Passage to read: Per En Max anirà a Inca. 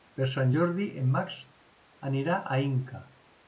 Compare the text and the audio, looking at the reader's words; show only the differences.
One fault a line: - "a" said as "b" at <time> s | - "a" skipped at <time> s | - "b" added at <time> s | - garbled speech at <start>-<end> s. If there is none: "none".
- "Sant Jordi" added at 0.3 s